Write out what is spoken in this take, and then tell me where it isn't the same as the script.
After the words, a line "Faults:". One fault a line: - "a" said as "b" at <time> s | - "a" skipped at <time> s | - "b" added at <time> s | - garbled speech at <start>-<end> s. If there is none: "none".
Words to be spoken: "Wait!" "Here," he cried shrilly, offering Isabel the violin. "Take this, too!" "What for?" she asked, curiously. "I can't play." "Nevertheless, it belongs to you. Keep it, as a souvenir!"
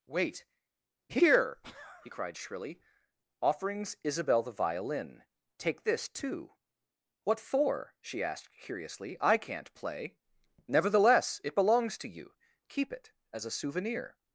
"Wait!" "Here," he cried shrilly, offerings Isabel the violin. "Take this, too!" "What for?" she asked, curiously. "I can't play." "Nevertheless, it belongs to you. Keep it, as a souvenir!"
Faults:
- "offering" said as "offerings" at 3.4 s